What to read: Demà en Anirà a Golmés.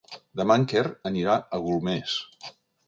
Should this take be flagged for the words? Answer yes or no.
yes